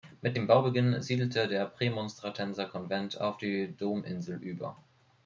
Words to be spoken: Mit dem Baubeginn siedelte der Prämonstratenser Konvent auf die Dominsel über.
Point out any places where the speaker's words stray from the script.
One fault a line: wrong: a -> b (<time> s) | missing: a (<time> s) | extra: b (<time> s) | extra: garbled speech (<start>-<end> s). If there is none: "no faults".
no faults